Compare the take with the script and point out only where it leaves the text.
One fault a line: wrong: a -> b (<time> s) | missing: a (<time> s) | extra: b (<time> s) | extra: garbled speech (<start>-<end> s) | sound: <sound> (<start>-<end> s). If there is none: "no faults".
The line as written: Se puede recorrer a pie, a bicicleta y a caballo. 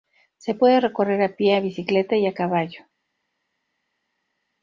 no faults